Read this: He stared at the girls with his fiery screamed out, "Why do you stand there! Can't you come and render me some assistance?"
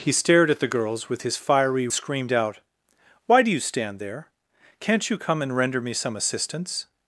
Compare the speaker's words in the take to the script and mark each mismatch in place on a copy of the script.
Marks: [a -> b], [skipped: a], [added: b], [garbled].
He stared at the girls with his fiery screamed out, "Why do you stand there! Can't you come and render me some assistance?"